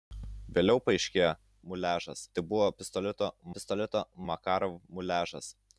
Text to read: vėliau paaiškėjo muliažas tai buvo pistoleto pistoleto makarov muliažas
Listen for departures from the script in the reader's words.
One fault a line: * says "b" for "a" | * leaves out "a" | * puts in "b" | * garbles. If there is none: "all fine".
all fine